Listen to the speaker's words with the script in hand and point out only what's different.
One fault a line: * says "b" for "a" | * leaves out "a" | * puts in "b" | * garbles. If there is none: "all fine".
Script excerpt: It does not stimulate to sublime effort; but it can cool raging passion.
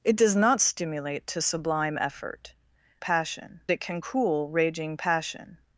* says "passion" for "but"